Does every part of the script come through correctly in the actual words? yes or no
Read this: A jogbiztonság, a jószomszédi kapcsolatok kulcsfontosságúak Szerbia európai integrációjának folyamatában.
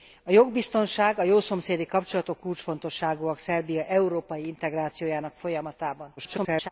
no